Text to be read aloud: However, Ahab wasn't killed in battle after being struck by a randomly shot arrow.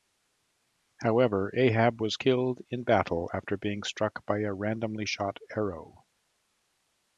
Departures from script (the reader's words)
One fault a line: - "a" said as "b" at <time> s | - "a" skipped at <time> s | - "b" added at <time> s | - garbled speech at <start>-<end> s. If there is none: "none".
- "wasn't" said as "was" at 2.0 s